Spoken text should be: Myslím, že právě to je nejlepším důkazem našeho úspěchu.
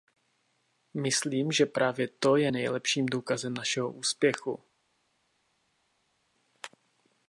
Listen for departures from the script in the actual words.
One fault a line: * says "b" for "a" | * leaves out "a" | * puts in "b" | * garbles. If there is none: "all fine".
all fine